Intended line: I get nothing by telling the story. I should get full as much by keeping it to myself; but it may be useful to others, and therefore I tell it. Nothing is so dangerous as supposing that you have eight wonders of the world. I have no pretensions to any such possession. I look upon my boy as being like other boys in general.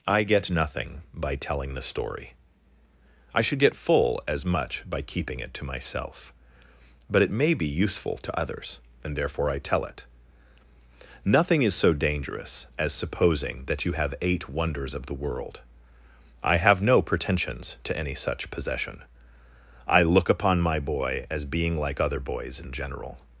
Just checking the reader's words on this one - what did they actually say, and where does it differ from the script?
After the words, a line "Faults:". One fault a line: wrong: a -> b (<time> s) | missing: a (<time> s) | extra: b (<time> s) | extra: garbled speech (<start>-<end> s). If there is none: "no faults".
I get nothing by telling the story. I should get full as much by keeping it to myself; but it may be useful to others, and therefore I tell it. Nothing is so dangerous as supposing that you have eight wonders of the world. I have no pretensions to any such possession. I look upon my boy as being like other boys in general.
Faults:
no faults